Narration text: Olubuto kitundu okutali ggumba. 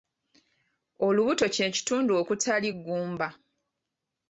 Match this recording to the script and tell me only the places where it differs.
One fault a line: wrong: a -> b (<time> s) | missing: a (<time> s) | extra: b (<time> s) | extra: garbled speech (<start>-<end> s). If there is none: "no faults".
extra: kye (1.6 s)